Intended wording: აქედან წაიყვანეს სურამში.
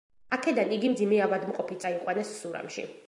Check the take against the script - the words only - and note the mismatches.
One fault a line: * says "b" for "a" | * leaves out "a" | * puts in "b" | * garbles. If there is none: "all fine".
* puts in "იგი მძიმე ავადმყოფი"